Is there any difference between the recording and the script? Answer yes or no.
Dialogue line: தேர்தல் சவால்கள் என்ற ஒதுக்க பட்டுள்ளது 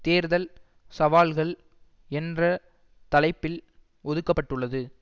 yes